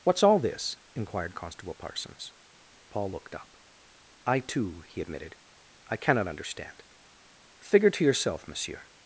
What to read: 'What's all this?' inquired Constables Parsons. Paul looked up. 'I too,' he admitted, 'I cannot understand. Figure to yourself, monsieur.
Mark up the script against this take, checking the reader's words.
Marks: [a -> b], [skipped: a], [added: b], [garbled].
'What's all this?' inquired [Constables -> Constable] Parsons. Paul looked up. 'I too,' he admitted, 'I cannot understand. Figure to yourself, monsieur.